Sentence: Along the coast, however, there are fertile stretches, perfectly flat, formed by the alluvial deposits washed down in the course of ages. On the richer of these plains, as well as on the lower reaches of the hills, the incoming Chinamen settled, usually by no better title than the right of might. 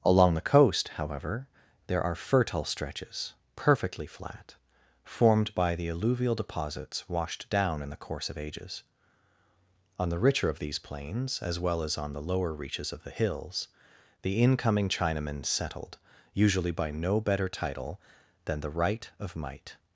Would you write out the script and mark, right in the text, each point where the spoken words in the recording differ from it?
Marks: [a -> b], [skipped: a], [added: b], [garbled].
Along the coast, however, there are fertile stretches, perfectly flat, formed by the alluvial deposits washed down in the course of ages. On the richer of these plains, as well as on the lower reaches of the hills, the incoming Chinamen settled, usually by no better title than the right of might.